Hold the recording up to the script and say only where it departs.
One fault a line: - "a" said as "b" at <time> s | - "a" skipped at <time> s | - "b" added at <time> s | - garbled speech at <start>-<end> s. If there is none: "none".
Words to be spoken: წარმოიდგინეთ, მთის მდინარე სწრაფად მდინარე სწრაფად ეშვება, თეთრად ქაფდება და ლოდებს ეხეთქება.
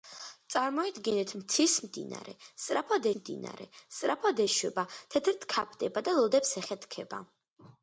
none